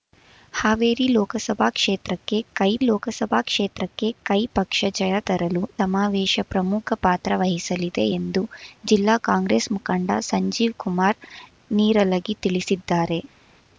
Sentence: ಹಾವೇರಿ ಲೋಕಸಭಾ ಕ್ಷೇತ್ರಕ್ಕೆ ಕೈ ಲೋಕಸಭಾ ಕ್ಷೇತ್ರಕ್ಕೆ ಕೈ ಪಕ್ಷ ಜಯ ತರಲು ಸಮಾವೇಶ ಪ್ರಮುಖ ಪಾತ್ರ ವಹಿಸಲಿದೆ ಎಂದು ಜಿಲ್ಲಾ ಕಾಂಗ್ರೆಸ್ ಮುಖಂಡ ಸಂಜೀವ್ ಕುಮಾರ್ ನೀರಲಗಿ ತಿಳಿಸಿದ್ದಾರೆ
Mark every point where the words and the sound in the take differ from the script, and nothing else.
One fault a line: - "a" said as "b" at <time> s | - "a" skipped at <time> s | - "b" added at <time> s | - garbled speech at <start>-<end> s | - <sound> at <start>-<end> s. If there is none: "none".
none